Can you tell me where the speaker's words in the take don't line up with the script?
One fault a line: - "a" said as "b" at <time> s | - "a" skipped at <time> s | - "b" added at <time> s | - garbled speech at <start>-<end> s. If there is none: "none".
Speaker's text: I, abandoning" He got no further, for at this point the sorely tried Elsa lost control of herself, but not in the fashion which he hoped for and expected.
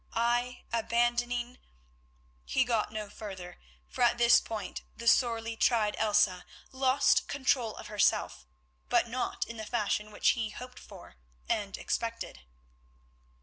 none